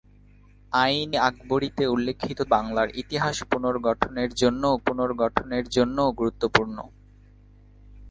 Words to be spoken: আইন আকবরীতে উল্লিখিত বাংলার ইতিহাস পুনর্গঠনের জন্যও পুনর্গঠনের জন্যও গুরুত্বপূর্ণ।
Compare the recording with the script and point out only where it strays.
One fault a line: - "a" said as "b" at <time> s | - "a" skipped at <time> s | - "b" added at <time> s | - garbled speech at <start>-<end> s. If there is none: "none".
none